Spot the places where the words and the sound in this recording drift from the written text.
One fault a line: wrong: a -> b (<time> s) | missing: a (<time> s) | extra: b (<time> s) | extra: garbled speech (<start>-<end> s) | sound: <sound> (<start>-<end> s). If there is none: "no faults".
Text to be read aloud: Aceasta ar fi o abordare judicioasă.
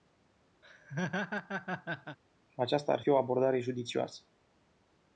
sound: laugh (0.6-2.2 s)